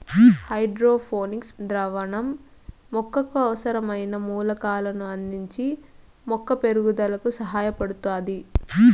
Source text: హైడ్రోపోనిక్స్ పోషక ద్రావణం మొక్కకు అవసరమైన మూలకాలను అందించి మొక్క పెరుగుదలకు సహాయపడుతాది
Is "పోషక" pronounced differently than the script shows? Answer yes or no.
yes